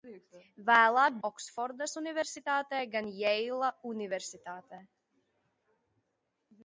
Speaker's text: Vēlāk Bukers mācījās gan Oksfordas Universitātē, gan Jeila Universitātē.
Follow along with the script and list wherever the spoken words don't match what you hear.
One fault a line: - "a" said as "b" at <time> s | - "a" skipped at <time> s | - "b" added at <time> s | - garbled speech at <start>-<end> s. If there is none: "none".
- "Bukers mācījās gan" skipped at 1.2 s